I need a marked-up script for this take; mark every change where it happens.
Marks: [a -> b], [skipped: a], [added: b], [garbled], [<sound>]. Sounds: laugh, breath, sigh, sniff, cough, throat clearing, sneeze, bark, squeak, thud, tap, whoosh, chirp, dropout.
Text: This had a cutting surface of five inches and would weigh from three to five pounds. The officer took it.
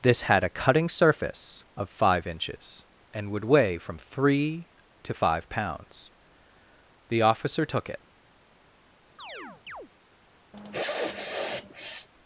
This had a cutting surface of five inches and would weigh from three to five pounds. The officer took it. [chirp] [sniff]